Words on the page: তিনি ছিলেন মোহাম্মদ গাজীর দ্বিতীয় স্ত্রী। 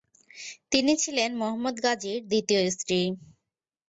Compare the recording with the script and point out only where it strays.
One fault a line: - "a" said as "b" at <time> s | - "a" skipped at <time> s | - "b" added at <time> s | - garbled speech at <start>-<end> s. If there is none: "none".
none